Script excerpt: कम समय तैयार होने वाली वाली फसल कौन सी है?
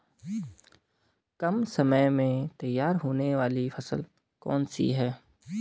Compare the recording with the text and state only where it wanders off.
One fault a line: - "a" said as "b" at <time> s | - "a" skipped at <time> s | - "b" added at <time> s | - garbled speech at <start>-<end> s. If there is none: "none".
- "में" added at 2.1 s
- "वाली" skipped at 3.7 s